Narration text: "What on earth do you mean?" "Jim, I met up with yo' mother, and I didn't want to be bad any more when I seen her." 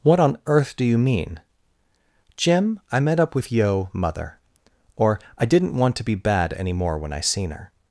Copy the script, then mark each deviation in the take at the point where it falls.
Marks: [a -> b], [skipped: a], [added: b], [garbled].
"What on earth do you mean?" "Jim, I met up with yo' mother, [and -> or] I didn't want to be bad any more when I seen her."